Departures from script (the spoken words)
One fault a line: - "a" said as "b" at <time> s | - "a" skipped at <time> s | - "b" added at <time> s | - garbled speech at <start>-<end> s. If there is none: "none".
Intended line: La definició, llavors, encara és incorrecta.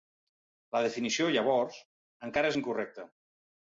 none